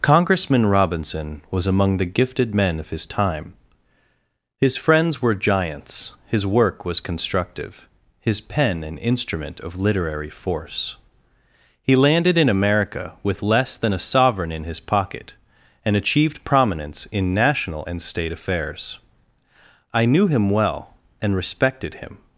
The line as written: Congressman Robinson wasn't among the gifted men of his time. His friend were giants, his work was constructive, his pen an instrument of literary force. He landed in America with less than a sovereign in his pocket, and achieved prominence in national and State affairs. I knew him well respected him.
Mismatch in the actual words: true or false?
true